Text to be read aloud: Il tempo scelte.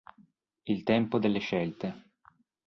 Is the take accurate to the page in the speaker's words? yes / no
no